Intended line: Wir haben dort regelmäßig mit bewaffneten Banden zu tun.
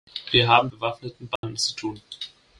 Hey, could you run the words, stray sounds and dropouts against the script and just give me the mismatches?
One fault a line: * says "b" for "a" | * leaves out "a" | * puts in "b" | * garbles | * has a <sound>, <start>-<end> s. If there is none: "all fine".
* leaves out "dort regelmäßig mit"
* has a dropout, 1.4-1.4 s